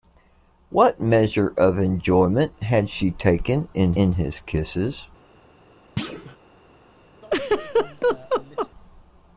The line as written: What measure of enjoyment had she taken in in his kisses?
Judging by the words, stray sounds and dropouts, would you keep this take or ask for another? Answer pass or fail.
fail